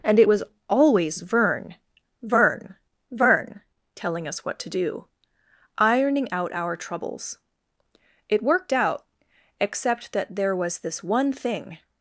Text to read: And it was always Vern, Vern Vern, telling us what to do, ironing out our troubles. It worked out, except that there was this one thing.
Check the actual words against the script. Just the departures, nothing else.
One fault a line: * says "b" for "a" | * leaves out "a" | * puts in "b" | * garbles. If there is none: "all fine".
all fine